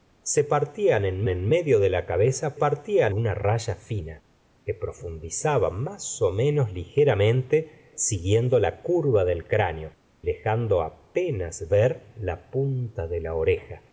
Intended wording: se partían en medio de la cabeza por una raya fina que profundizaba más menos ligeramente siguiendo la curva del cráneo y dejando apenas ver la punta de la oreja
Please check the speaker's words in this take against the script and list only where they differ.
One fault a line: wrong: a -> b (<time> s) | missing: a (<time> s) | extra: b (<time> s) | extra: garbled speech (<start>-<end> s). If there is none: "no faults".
extra: en (1.3 s)
wrong: por -> partían (2.5 s)
missing: y (9.9 s)